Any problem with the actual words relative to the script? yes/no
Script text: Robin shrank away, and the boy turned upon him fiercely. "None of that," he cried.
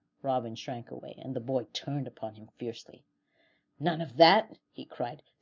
no